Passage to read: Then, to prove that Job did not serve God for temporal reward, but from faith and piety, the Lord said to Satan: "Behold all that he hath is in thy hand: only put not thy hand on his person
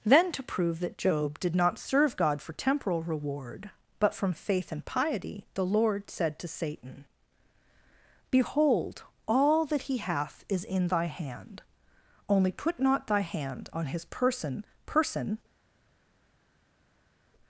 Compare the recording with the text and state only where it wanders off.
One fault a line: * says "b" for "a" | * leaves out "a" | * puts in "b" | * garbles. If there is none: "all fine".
* puts in "person"